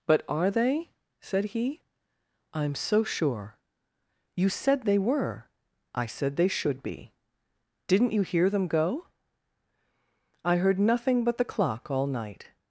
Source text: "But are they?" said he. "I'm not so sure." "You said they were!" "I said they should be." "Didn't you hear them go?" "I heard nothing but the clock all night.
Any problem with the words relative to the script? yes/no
yes